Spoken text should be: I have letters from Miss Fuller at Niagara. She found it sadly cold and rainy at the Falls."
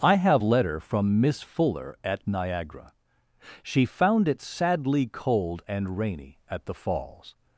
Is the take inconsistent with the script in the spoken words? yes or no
yes